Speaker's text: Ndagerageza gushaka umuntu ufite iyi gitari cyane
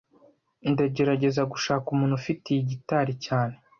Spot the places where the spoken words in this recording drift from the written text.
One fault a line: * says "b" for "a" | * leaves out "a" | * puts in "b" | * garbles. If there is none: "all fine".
all fine